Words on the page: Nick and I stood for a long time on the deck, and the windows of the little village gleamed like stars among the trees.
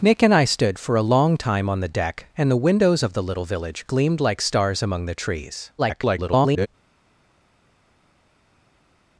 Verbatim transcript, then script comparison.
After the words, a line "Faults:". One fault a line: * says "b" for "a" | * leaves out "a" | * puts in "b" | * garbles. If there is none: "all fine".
Nick and I stood for a long time on the deck, and the windows of the little village gleamed like stars among the trees. [garbled]
Faults:
* garbles